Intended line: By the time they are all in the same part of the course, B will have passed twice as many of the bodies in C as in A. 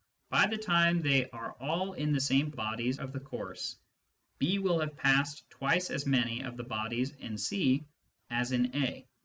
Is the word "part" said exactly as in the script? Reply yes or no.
no